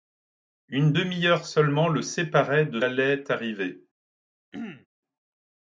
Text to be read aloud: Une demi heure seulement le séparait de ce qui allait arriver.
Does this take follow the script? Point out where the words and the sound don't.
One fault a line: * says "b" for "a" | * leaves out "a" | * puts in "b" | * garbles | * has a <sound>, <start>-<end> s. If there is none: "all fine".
* leaves out "ce qui"
* has a throat clearing, 4.5-4.9 s